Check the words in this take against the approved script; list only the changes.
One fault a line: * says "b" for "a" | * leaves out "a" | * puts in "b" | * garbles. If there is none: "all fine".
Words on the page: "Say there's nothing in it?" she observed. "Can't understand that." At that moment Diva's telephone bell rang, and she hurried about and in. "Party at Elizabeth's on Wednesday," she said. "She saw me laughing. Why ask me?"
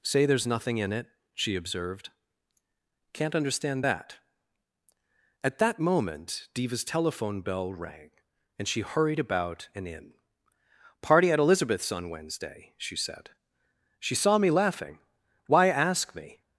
all fine